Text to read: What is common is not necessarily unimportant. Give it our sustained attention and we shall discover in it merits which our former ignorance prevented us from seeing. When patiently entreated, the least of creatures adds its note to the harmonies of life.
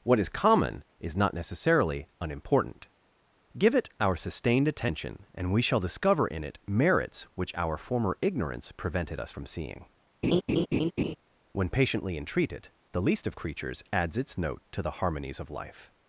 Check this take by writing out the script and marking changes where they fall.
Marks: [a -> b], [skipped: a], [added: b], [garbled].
What is common is not necessarily unimportant. Give it our sustained attention and we shall discover in it merits which our former ignorance prevented us from seeing. When patiently entreated, the least of creatures adds its note to the harmonies of life.